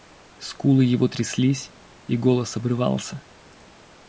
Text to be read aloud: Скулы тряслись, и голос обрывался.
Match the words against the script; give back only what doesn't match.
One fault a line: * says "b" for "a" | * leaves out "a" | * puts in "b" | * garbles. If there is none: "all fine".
* puts in "его"